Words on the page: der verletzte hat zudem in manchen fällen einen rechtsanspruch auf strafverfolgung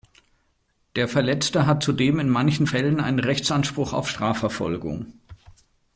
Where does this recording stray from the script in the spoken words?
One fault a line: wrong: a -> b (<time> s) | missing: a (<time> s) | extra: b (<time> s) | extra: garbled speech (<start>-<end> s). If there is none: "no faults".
no faults